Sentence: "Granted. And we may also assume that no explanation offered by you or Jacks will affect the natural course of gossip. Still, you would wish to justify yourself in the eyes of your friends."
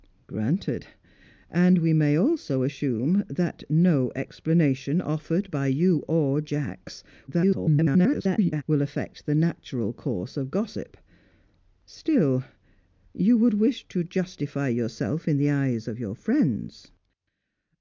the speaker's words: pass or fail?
fail